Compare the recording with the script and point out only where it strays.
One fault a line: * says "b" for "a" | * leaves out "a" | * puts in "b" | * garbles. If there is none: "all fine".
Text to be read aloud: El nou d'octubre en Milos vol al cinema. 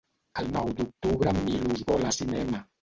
all fine